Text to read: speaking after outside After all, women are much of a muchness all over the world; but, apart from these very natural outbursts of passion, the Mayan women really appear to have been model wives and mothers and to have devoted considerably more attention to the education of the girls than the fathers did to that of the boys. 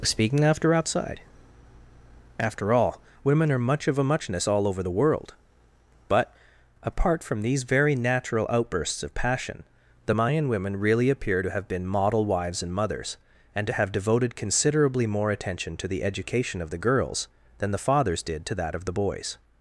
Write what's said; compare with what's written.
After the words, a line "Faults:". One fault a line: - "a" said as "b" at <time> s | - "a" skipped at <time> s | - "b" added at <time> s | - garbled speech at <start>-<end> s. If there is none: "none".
speaking after outside After all, women are much of a muchness all over the world; but, apart from these very natural outbursts of passion, the Mayan women really appear to have been model wives and mothers and to have devoted considerably more attention to the education of the girls than the fathers did to that of the boys.
Faults:
none